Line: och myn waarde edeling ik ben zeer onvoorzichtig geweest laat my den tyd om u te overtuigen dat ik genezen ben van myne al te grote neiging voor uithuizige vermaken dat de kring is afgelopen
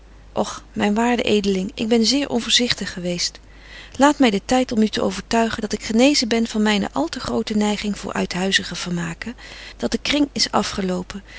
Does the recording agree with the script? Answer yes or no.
yes